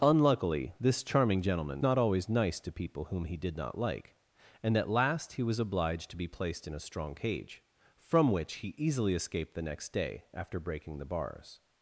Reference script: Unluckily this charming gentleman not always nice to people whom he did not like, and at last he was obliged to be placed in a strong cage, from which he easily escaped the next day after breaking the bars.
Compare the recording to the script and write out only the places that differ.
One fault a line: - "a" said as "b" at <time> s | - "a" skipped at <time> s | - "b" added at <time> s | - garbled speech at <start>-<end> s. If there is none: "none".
none